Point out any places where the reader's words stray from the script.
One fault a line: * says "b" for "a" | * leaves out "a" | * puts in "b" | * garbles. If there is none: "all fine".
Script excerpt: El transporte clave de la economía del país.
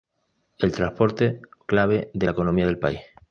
all fine